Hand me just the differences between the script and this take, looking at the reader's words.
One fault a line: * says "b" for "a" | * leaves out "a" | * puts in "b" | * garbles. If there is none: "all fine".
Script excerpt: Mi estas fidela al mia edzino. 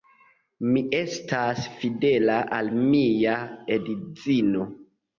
all fine